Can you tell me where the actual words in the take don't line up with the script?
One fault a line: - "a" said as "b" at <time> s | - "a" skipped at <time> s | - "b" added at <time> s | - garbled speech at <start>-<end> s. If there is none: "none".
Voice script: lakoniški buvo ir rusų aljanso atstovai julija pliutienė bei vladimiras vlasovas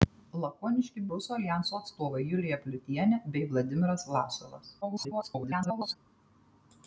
- "buvo ir" skipped at 1.0 s
- garbled speech at 4.8-6.0 s